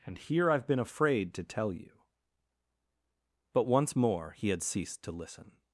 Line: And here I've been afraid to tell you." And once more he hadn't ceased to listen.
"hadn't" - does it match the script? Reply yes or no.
no